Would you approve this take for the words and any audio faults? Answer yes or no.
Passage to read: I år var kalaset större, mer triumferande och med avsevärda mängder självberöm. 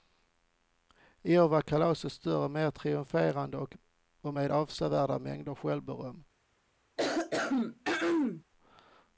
no